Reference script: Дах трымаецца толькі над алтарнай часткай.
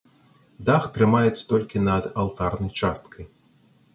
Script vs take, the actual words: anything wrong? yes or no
no